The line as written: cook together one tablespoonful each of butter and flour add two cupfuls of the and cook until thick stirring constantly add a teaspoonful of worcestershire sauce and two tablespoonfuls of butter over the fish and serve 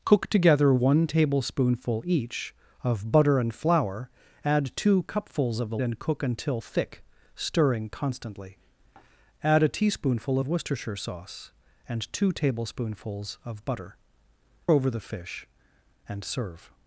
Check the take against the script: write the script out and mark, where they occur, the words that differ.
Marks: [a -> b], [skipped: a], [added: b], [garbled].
cook together one tablespoonful each of butter and flour add two cupfuls of the and cook until thick stirring constantly add a teaspoonful of worcestershire sauce and two tablespoonfuls of butter over the fish and serve